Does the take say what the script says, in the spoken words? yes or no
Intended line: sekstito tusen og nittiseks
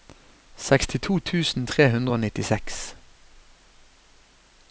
no